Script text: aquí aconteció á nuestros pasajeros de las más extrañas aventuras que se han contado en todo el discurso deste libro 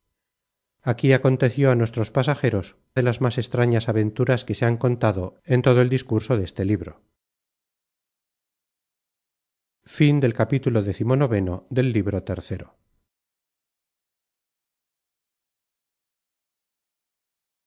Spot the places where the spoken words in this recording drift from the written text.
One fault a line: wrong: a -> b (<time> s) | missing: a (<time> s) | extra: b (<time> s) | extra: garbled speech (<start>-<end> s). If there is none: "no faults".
no faults